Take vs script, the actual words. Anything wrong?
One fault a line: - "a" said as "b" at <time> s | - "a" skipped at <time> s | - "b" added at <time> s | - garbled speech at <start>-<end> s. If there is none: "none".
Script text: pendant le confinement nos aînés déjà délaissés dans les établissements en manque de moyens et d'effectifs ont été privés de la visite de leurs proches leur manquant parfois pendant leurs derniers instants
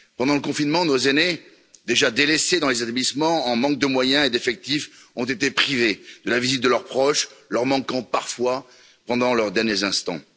none